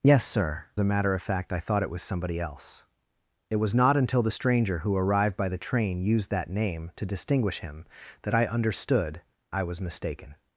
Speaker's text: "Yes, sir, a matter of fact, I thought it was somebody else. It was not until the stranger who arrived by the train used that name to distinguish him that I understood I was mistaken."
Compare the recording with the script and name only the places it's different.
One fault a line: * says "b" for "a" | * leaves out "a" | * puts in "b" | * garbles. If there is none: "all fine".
all fine